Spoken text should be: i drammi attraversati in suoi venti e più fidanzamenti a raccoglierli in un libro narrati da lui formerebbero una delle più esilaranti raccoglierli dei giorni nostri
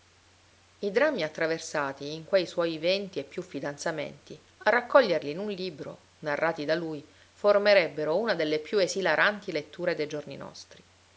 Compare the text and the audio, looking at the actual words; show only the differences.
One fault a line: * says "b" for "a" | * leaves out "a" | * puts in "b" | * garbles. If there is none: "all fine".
* puts in "quei"
* says "letture" for "raccoglierli"